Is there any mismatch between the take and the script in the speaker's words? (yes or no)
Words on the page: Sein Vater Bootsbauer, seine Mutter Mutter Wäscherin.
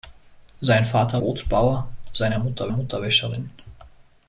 no